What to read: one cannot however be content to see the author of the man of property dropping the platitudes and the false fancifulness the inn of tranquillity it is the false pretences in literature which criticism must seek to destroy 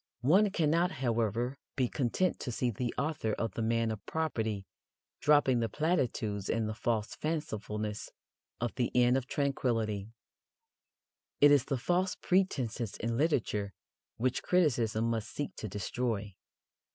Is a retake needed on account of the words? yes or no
yes